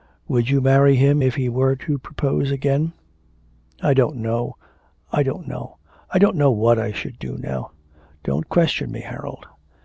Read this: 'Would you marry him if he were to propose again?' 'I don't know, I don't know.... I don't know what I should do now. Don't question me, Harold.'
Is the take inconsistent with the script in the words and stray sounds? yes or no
no